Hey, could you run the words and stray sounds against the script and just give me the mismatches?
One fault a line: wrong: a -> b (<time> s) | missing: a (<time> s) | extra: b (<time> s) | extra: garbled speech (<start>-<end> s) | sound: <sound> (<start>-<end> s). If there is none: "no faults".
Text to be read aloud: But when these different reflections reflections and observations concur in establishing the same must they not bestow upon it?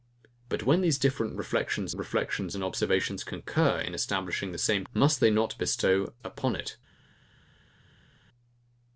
no faults